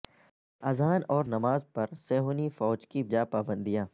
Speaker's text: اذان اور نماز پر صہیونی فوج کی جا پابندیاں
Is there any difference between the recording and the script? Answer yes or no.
no